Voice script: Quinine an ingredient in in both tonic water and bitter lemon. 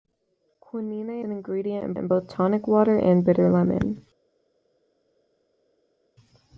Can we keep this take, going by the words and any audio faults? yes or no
yes